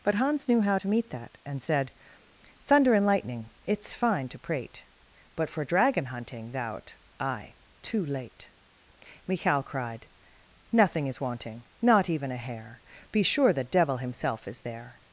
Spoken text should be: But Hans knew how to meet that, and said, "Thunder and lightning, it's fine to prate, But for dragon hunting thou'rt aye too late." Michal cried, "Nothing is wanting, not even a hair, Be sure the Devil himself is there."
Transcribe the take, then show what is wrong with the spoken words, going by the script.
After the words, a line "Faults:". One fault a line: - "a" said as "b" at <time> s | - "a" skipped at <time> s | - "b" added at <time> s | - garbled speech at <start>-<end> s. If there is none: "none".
But Hans knew how to meet that, and said, "Thunder and lightning, it's fine to prate, But for dragon hunting thou'rt aye too late." Michal cried, "Nothing is wanting, not even a hair, Be sure the Devil himself is there."
Faults:
none